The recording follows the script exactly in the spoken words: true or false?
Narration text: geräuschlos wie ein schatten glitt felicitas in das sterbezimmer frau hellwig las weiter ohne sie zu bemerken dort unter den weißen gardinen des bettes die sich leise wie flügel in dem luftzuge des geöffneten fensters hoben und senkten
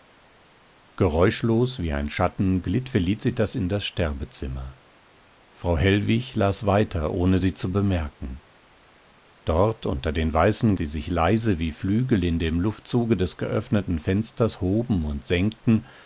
false